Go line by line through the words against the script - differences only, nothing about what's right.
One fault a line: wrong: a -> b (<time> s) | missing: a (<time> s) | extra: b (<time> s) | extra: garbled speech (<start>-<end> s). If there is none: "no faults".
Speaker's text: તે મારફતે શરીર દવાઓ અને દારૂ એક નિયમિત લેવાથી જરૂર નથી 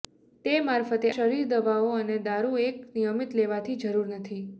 no faults